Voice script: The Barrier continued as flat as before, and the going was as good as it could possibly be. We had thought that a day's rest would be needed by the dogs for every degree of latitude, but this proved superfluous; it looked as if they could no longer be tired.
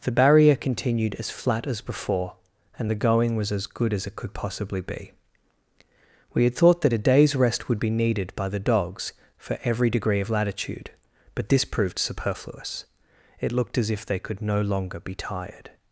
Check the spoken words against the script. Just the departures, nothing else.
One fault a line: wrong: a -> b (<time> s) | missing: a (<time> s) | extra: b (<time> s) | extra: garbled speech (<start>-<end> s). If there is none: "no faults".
no faults